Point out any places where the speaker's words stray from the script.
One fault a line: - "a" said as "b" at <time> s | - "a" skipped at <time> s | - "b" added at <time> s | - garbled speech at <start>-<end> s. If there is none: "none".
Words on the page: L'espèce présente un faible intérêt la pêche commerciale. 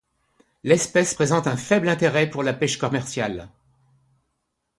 - "pour" added at 2.3 s